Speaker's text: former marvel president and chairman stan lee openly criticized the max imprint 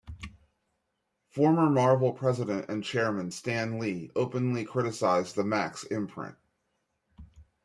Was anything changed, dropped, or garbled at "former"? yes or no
no